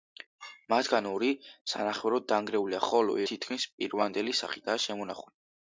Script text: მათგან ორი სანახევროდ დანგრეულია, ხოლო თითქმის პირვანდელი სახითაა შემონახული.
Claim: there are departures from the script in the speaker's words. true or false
false